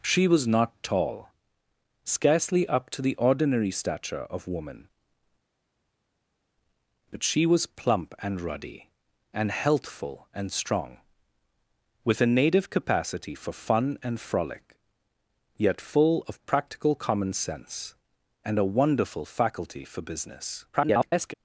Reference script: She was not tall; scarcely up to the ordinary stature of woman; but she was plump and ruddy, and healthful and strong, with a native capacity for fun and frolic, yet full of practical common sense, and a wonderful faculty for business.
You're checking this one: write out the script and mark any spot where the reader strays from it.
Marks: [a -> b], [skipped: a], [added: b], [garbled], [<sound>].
She was not tall; scarcely up to the ordinary stature of woman; but she was plump and ruddy, and healthful and strong, with a native capacity for fun and frolic, yet full of practical common sense, and a wonderful faculty for business. [garbled]